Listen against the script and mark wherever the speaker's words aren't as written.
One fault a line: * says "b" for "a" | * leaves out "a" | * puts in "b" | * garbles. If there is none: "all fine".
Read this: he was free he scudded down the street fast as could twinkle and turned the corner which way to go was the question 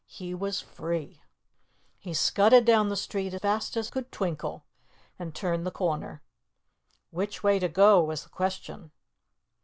all fine